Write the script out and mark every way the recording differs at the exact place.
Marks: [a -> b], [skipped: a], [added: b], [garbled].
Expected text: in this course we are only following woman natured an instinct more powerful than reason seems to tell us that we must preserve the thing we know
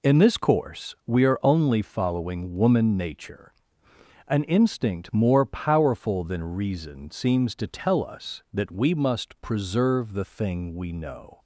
in this course we are only following woman [natured -> nature] an instinct more powerful than reason seems to tell us that we must preserve the thing we know